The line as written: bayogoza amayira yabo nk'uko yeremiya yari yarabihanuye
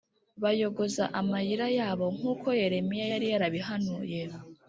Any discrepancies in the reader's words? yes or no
no